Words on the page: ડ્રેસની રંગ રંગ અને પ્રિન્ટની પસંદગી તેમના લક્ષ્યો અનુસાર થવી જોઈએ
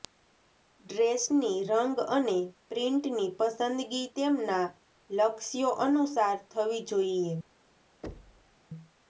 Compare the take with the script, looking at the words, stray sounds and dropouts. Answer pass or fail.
fail